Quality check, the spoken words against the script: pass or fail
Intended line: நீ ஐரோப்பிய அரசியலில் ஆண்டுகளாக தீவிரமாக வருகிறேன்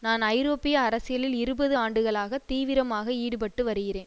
fail